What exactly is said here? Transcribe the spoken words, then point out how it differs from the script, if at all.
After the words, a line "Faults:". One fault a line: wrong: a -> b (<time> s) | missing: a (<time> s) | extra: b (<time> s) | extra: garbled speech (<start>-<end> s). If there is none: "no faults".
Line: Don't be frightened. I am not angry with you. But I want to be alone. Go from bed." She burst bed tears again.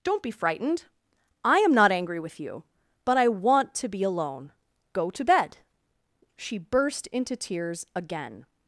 Don't be frightened. I am not angry with you. But I want to be alone. Go to bed." She burst into tears again.
Faults:
wrong: from -> to (5.1 s)
wrong: bed -> into (7.1 s)